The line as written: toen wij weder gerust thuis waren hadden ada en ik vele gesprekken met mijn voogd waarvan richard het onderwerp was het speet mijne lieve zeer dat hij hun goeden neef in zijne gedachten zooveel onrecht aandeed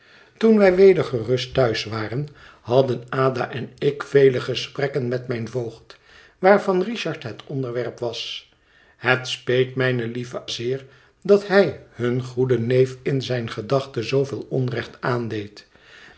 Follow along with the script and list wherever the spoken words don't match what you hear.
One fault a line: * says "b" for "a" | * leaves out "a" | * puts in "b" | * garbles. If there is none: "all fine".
all fine